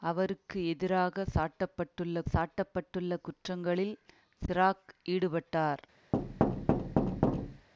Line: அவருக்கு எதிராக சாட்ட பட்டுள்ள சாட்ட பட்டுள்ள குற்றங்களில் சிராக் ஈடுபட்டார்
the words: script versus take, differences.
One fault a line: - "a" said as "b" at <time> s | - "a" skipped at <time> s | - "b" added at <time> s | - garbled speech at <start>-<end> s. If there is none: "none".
none